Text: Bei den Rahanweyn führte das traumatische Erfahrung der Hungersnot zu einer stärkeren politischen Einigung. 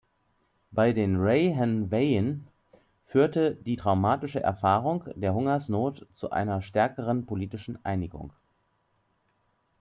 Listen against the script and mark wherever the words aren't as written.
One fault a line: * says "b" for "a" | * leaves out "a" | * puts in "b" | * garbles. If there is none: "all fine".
* says "die" for "das"